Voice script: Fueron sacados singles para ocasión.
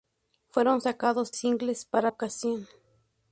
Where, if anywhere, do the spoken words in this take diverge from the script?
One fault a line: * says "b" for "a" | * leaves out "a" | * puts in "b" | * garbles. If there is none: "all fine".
all fine